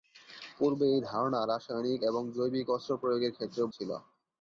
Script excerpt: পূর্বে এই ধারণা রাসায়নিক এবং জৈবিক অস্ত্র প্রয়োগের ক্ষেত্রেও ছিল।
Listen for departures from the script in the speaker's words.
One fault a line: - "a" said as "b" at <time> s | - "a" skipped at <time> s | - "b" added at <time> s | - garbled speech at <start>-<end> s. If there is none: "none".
none